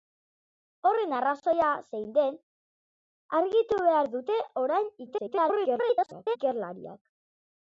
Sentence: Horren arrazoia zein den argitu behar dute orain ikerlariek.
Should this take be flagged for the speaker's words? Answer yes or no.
yes